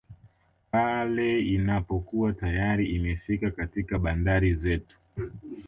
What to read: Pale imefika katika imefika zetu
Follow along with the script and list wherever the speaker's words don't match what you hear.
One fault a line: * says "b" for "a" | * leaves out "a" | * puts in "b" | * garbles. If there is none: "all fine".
* puts in "inapokuwa tayari"
* says "bandari" for "imefika"